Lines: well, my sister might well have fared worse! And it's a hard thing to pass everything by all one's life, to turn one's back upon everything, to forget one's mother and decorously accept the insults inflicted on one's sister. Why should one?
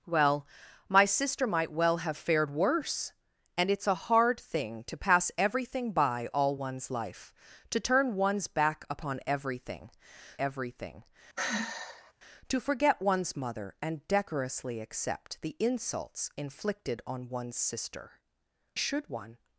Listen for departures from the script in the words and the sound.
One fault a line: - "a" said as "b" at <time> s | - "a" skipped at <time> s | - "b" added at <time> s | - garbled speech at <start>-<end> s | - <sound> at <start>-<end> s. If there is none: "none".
- "everything" added at 10.4 s
- sigh at 11.4-12.1 s
- "Why" skipped at 18.2 s